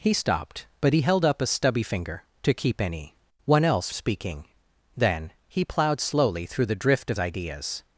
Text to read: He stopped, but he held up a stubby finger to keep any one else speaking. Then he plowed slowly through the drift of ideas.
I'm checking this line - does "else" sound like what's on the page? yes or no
yes